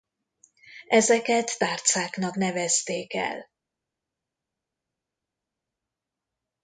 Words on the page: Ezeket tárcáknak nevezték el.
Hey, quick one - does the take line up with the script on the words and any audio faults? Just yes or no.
yes